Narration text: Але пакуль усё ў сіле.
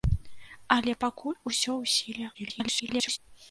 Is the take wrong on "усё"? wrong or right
right